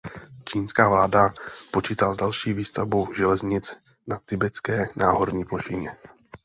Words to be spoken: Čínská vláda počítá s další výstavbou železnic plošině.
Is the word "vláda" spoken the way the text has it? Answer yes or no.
yes